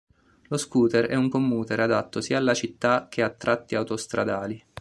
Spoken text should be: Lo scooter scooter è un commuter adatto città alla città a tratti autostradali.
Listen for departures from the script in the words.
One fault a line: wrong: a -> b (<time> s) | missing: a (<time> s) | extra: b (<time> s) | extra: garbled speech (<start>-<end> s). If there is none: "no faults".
missing: scooter (1.1 s)
wrong: città -> sia (2.2 s)
extra: che (3.1 s)